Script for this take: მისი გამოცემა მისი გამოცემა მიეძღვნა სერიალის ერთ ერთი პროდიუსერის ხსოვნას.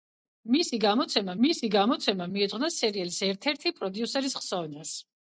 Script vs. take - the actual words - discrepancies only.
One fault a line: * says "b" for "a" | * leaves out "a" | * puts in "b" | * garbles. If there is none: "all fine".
all fine